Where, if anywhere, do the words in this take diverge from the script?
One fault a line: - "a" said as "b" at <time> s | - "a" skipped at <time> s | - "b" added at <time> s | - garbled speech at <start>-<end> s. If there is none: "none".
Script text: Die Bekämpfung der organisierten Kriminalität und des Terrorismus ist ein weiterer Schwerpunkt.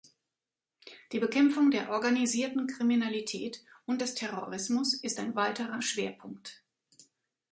none